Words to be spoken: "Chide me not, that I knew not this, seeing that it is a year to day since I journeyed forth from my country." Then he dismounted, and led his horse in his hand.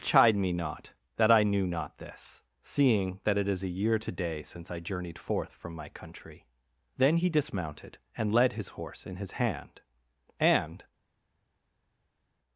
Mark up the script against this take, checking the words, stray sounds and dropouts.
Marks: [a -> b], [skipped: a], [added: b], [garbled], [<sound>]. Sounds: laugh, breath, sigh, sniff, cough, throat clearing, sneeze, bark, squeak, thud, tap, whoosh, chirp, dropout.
"Chide me not, that I knew not this, seeing that it is a year to day since I journeyed forth from my country." Then he dismounted, and led his horse in his hand. [added: And]